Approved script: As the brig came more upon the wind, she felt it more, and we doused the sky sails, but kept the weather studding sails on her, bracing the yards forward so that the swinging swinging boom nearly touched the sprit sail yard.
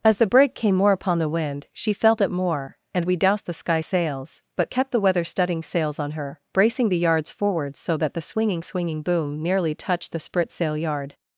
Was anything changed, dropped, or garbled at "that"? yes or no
no